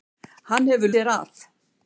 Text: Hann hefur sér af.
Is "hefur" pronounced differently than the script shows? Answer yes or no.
no